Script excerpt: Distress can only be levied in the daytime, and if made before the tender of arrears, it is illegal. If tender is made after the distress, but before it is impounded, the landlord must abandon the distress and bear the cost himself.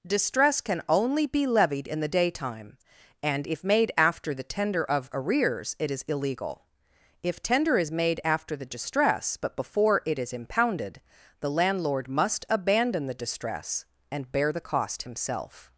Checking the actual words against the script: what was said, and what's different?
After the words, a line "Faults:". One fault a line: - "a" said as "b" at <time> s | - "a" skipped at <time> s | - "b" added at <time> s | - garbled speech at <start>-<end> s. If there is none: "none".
Distress can only be levied in the daytime, and if made after the tender of arrears, it is illegal. If tender is made after the distress, but before it is impounded, the landlord must abandon the distress and bear the cost himself.
Faults:
- "before" said as "after" at 4.0 s